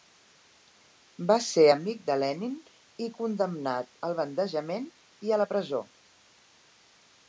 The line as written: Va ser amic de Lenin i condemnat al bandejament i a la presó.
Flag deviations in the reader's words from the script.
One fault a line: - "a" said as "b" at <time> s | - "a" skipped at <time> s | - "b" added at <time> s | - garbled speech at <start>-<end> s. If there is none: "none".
none